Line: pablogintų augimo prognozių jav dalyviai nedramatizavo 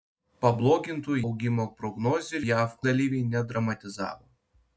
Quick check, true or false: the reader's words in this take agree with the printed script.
true